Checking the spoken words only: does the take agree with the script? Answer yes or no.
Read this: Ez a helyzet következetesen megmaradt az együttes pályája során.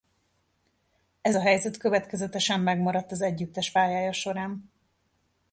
yes